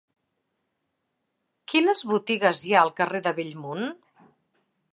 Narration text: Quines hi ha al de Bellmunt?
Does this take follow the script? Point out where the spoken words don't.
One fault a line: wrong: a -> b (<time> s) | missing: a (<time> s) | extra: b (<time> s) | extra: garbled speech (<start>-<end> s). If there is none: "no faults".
extra: botigues (2.1 s)
extra: carrer (3.0 s)